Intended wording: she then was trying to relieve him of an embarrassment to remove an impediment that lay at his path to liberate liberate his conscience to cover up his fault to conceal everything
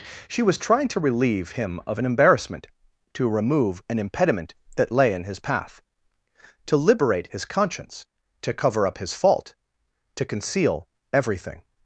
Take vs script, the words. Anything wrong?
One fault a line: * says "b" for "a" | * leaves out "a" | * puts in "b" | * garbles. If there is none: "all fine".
* leaves out "then"
* says "in" for "at"
* leaves out "liberate"